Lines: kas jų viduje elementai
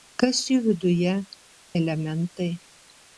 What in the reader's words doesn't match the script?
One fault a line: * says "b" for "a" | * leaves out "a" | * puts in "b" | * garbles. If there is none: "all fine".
all fine